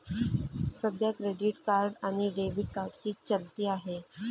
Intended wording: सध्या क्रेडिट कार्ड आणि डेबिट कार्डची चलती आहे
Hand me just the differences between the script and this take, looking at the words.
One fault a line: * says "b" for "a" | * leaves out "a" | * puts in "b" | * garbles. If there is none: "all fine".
all fine